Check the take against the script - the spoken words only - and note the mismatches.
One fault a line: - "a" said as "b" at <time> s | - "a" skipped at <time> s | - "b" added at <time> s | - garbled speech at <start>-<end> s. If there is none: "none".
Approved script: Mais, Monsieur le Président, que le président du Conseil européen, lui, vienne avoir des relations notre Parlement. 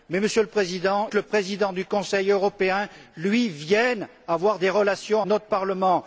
none